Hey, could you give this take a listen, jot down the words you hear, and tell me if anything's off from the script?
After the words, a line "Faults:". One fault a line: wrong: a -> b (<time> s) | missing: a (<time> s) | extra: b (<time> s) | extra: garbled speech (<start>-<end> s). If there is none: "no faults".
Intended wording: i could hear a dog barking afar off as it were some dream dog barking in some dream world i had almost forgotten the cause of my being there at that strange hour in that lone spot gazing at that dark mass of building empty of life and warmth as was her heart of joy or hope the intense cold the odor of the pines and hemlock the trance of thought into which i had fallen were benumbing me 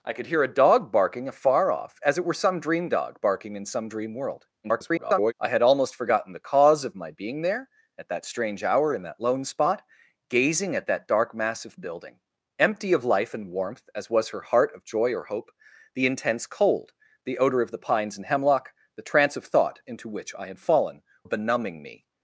i could hear a dog barking afar off as it were some dream dog barking in some dream world [garbled] i had almost forgotten the cause of my being there at that strange hour in that lone spot gazing at that dark mass of building empty of life and warmth as was her heart of joy or hope the intense cold the odor of the pines and hemlock the trance of thought into which i had fallen benumbing me
Faults:
extra: garbled speech (4.6-5.3 s)
missing: were (21.0 s)